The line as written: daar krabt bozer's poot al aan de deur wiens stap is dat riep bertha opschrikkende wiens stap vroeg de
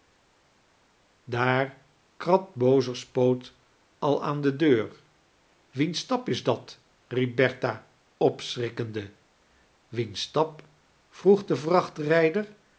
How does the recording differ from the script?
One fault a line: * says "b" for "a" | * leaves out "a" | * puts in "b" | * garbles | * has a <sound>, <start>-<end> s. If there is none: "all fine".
all fine